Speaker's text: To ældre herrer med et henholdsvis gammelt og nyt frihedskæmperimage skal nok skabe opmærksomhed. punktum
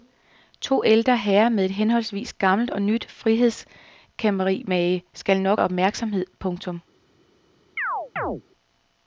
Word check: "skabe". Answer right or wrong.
wrong